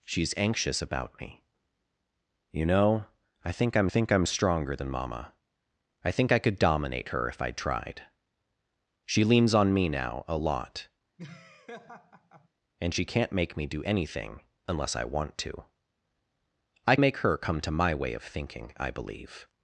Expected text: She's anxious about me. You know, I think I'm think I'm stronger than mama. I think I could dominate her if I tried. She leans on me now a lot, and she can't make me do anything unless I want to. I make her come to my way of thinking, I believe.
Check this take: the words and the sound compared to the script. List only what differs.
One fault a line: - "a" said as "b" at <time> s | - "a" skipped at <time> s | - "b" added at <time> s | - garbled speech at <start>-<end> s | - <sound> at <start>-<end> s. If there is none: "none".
- laugh at 11.2-12.5 s